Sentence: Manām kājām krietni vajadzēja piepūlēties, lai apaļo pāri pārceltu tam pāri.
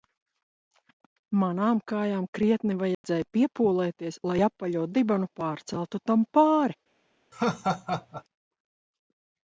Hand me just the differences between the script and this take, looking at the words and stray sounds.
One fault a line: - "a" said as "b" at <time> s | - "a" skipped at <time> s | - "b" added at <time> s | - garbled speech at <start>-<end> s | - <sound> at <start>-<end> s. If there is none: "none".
- dropout at 2.9-3.0 s
- "pāri" said as "dibenu" at 5.0 s
- laugh at 7.3-8.2 s